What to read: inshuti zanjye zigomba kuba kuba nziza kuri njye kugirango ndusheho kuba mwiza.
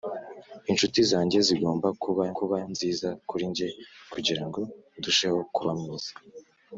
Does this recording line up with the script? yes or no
yes